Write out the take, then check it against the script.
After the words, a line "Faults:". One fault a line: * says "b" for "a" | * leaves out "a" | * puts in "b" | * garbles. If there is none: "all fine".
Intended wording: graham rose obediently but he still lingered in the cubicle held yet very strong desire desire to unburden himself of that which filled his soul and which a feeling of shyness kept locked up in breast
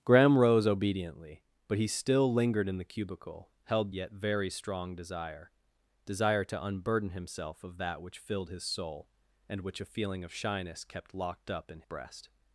graham rose obediently but he still lingered in the cubicle held yet very strong desire desire to unburden himself of that which filled his soul and which a feeling of shyness kept locked up in breast
Faults:
all fine